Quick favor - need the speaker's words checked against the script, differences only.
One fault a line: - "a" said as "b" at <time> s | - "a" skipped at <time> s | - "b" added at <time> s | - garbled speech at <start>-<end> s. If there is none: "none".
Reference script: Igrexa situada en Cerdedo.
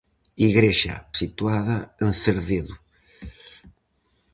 none